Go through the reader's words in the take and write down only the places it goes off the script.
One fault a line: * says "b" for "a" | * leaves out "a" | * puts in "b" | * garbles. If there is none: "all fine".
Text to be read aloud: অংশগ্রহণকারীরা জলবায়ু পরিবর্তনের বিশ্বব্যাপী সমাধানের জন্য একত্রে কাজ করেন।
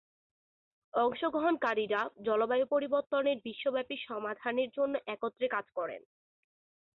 all fine